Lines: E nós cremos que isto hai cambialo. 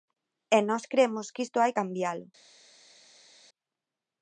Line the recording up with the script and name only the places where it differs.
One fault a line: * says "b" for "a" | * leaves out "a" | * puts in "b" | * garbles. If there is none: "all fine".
all fine